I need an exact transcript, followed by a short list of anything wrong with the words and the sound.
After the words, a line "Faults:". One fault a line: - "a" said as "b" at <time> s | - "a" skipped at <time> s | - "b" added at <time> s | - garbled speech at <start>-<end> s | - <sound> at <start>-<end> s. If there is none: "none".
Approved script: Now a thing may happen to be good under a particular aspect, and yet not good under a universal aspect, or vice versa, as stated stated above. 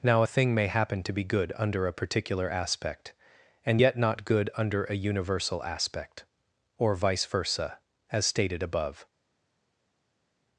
Now a thing may happen to be good under a particular aspect, and yet not good under a universal aspect, or vice versa, as stated above.
Faults:
- "stated" skipped at 8.6 s